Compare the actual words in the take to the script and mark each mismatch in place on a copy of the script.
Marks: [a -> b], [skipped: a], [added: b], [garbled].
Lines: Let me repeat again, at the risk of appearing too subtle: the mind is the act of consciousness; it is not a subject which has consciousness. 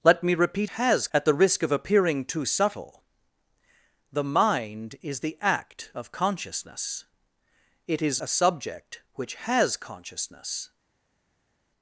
Let me repeat [again, -> has] at the risk of appearing too subtle: the mind is the act of consciousness; it is [skipped: not] a subject which has consciousness.